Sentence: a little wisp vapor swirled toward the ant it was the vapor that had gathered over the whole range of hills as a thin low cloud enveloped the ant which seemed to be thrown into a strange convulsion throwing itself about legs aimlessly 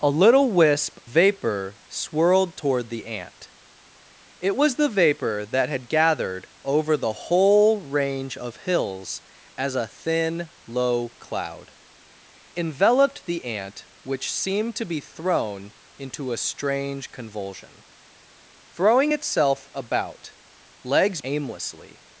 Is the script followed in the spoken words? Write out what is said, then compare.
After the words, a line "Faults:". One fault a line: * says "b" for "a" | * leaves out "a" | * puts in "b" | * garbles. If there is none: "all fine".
a little wisp vapor swirled toward the ant it was the vapor that had gathered over the whole range of hills as a thin low cloud enveloped the ant which seemed to be thrown into a strange convulsion throwing itself about legs aimlessly
Faults:
all fine